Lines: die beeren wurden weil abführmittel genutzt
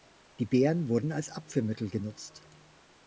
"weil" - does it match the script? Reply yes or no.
no